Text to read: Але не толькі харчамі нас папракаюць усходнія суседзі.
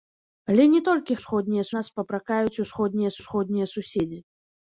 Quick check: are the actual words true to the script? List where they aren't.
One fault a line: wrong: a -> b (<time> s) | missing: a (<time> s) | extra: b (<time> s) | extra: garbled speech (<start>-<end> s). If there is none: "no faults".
wrong: харчамі -> усходнія (1.2 s)
extra: усходнія (3.2 s)